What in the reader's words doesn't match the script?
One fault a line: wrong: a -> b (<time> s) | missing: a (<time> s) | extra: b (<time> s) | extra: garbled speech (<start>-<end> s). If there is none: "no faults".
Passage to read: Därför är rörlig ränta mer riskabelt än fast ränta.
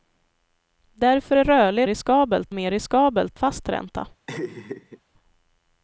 wrong: ränta -> riskabelt (1.9 s)
missing: än (3.4 s)